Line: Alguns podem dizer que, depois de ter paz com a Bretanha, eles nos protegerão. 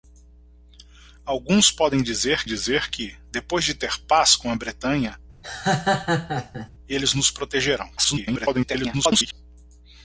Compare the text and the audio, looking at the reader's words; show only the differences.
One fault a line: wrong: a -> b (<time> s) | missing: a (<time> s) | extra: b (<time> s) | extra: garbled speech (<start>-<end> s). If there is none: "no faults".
extra: dizer (2.4 s)
extra: garbled speech (8.0-9.3 s)